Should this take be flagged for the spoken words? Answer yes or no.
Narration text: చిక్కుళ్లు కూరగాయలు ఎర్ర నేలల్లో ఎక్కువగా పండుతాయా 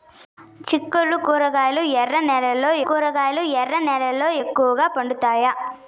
yes